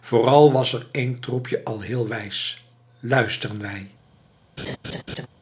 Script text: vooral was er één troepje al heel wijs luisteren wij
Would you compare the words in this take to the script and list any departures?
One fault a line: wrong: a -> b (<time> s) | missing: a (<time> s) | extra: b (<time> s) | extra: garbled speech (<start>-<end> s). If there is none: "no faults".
no faults